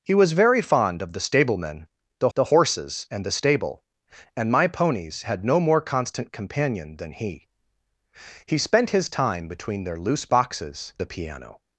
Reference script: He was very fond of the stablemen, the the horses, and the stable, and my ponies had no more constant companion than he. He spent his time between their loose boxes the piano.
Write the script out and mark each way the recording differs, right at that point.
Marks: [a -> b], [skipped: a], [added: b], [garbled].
He was very fond of the stablemen, the the horses, and the stable, and my ponies had no more constant companion than he. He spent his time between their loose boxes the piano.